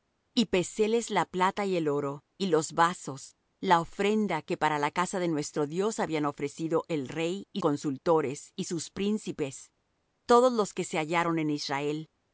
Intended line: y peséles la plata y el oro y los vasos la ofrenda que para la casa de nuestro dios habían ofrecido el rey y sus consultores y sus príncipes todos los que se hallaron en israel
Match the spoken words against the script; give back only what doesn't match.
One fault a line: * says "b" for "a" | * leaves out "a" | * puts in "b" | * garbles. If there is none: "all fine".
* leaves out "sus"